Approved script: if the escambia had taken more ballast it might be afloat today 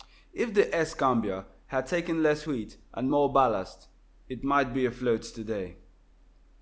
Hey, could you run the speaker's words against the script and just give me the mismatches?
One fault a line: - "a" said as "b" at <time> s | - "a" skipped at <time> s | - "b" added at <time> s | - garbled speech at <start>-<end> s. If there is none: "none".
- "less wheat and" added at 2.2 s